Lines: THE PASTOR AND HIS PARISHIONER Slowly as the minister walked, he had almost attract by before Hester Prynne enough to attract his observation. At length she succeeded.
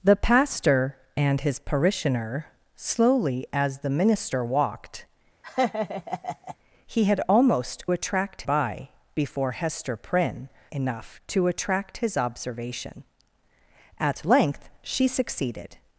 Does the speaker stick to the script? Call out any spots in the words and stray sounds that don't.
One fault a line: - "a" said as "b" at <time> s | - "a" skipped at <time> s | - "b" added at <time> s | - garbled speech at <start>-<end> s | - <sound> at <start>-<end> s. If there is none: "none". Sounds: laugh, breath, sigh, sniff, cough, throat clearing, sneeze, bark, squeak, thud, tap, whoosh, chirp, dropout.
- laugh at 5.4-6.6 s